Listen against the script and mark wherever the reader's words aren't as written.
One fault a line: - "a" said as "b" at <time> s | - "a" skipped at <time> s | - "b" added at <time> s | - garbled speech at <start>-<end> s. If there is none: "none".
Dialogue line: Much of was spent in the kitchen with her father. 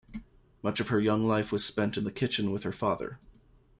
- "her young life" added at 0.9 s